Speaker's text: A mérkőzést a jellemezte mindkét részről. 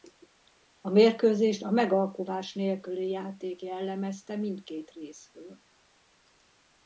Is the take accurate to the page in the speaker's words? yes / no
no